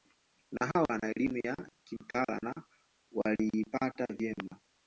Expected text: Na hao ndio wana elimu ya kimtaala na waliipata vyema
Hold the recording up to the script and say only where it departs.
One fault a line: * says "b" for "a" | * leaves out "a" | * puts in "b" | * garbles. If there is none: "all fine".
* leaves out "ndio"